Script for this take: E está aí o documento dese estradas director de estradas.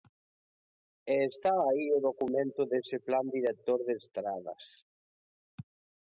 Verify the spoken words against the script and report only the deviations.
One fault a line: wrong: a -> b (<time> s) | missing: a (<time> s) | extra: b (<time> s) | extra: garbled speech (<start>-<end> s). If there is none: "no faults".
wrong: estradas -> plan (3.1 s)